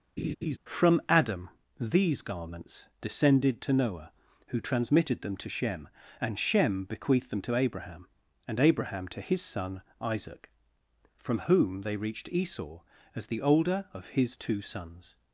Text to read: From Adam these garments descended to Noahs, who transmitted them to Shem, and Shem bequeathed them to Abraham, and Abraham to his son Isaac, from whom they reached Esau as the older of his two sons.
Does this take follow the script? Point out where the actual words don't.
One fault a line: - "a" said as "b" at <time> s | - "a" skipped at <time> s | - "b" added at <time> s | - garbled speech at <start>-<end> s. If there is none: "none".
- "Noahs" said as "Noah" at 3.7 s